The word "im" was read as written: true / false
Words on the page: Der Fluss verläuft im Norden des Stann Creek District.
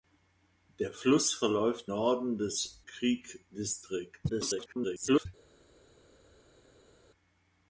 false